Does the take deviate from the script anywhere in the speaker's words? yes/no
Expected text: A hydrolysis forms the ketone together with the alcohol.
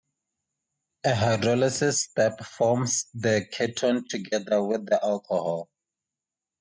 yes